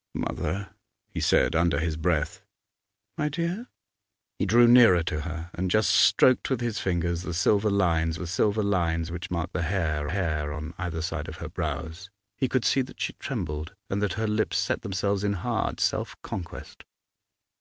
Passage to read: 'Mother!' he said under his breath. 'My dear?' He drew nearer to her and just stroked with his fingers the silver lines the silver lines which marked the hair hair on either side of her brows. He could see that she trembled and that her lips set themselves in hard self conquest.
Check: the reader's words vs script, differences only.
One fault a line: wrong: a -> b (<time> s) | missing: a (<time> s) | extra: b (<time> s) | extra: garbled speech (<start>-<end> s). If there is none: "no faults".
no faults